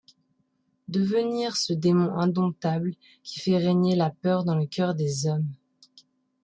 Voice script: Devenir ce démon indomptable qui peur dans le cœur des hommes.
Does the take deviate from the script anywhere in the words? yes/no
yes